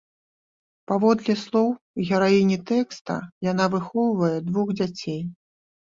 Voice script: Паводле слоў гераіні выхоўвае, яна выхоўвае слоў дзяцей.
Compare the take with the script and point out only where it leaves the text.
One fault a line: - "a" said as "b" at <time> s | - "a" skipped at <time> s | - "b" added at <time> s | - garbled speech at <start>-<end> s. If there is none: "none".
- "выхоўвае" said as "тэкста" at 2.7 s
- "слоў" said as "двух" at 4.5 s